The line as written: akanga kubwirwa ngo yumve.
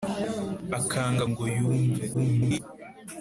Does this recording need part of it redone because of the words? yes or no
yes